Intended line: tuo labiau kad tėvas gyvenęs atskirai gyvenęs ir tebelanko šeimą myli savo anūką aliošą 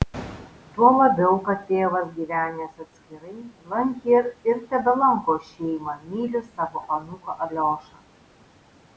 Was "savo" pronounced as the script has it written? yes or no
yes